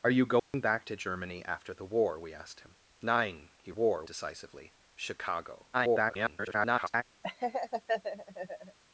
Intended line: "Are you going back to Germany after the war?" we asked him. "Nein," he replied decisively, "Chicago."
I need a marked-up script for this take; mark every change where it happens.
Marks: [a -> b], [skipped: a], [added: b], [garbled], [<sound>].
"Are you going [dropout] back to Germany after the war?" we asked him. "Nein," he [replied -> war] decisively, "Chicago." [garbled] [laugh]